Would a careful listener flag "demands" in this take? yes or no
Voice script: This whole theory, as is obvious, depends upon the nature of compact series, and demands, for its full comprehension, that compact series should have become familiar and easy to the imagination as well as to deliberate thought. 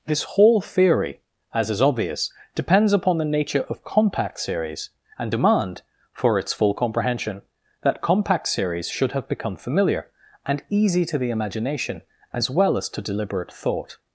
yes